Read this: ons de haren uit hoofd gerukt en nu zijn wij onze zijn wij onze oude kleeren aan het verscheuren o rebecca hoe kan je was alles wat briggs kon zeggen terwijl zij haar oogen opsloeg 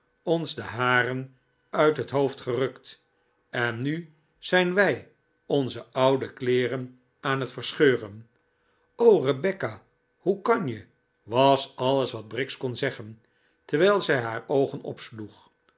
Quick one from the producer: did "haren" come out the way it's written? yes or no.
yes